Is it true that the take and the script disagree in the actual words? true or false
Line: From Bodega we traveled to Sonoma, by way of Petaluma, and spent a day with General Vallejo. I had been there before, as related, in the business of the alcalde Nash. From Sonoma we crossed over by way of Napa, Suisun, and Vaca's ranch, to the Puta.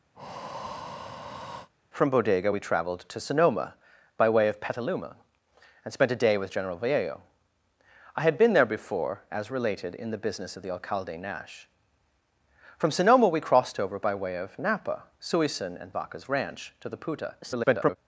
true